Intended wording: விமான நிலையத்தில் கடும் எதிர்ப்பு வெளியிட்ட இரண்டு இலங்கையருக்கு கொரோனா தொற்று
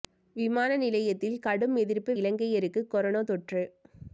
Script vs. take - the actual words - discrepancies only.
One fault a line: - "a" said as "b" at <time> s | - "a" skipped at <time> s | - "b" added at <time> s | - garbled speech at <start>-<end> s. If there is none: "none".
- "வெளியிட்ட இரண்டு" skipped at 2.1 s